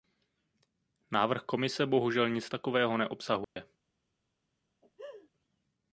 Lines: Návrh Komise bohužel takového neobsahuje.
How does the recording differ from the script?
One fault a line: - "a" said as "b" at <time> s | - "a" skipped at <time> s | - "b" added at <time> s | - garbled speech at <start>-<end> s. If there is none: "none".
- "nic" added at 2.3 s